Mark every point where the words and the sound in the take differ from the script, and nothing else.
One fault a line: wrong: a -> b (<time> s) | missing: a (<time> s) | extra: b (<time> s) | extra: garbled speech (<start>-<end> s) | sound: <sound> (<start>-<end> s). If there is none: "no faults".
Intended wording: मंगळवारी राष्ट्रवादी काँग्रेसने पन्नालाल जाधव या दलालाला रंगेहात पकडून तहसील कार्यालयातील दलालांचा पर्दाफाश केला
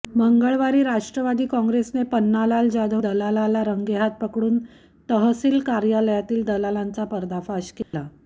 missing: या (3.0 s)
sound: dropout (7.8-7.9 s)